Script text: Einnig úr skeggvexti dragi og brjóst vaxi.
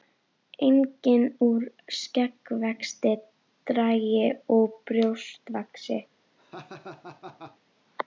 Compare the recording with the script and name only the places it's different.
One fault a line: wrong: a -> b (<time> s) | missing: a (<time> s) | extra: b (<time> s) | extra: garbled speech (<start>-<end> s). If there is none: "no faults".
no faults